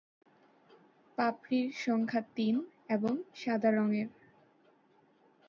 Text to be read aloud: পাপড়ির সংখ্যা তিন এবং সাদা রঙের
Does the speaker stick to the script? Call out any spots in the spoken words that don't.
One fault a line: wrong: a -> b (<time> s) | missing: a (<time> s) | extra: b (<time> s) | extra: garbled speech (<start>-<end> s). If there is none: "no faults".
no faults